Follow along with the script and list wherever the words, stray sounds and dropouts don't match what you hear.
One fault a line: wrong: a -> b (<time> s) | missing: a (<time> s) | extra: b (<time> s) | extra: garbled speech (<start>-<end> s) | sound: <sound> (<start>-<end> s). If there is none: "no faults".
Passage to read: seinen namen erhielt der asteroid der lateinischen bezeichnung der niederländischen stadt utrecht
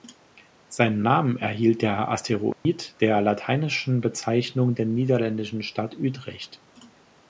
sound: dropout (2.5-2.7 s)